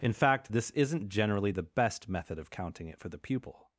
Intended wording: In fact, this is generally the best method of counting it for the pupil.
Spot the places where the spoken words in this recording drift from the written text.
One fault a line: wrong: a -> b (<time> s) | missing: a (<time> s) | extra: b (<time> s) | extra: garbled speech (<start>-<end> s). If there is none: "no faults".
wrong: is -> isn't (0.7 s)